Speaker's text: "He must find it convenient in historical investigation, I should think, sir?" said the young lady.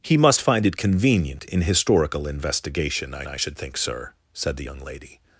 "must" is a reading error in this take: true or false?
false